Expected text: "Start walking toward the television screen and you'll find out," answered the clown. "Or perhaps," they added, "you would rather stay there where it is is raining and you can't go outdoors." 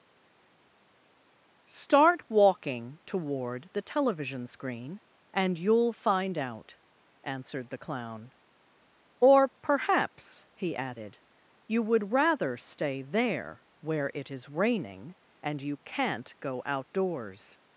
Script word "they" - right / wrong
wrong